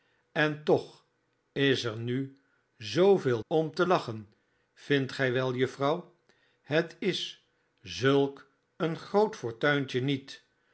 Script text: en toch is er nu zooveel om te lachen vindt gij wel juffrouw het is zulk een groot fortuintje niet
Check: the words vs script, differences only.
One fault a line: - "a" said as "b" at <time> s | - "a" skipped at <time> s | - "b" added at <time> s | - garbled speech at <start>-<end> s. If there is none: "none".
none